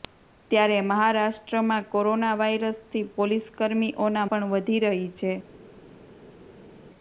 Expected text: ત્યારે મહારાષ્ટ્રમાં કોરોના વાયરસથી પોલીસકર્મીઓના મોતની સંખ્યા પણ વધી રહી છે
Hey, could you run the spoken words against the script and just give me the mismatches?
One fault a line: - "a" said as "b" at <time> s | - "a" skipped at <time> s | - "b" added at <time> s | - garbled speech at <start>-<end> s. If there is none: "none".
- "મોતની સંખ્યા" skipped at 4.3 s